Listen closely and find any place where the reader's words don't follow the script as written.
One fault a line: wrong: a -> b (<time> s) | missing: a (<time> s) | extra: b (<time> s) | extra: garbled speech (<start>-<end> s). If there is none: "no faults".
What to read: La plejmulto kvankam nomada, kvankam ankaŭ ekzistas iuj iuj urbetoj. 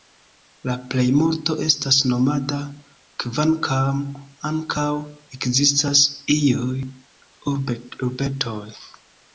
wrong: kvankam -> estas (1.6 s)
missing: iuj (6.9 s)